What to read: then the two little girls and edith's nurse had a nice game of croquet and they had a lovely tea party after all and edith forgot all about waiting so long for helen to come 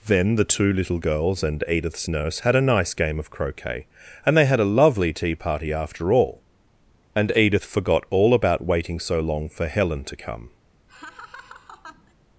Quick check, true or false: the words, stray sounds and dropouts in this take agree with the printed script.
false